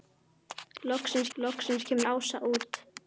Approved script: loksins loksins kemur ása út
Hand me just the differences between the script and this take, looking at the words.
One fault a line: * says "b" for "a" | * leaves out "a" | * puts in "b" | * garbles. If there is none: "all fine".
all fine